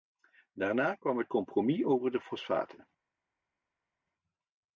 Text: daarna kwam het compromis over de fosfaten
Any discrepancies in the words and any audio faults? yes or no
no